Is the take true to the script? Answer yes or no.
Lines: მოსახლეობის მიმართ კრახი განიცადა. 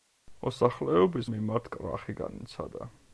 yes